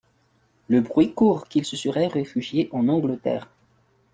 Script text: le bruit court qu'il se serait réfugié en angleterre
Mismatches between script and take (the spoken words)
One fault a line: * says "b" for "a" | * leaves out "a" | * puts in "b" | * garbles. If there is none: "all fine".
all fine